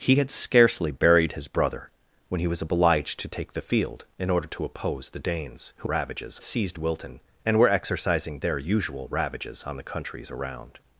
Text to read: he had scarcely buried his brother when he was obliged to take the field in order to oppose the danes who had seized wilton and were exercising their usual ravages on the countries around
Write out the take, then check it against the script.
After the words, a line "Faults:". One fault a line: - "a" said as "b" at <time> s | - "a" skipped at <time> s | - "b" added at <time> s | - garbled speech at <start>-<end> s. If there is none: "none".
he had scarcely buried his brother when he was obliged to take the field in order to oppose the danes who ravages seized wilton and were exercising their usual ravages on the countries around
Faults:
- "had" said as "ravages" at 5.9 s